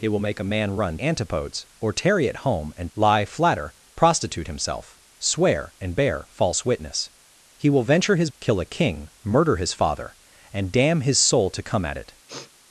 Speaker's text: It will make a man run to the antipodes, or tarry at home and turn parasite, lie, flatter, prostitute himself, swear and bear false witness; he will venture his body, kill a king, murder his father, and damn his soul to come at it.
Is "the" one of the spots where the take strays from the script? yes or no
yes